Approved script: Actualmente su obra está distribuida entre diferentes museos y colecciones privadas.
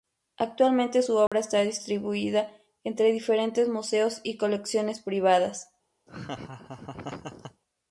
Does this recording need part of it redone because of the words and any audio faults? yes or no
yes